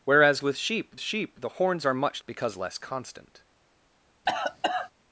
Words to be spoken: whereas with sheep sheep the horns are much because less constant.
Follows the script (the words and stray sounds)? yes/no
no